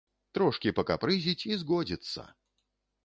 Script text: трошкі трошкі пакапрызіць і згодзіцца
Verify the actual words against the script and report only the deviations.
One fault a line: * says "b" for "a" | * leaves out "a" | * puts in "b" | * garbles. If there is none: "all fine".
* leaves out "трошкі"